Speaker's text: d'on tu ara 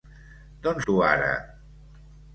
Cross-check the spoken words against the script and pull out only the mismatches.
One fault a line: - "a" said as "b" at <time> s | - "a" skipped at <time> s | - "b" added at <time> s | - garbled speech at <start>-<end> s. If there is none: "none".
none